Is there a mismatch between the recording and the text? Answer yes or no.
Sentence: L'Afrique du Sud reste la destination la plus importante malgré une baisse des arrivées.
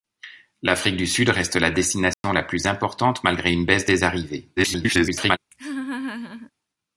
yes